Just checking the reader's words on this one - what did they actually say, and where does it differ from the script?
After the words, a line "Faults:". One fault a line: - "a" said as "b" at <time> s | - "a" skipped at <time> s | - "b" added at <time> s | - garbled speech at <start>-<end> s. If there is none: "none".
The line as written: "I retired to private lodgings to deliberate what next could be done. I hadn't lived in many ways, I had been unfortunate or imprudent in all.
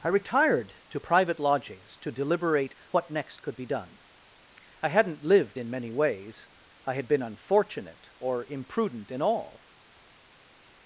"I retired to private lodgings to deliberate what next could be done. I hadn't lived in many ways, I had been unfortunate or imprudent in all.
Faults:
none